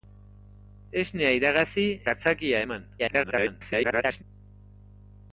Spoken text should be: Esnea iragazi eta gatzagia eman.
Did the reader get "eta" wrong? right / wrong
wrong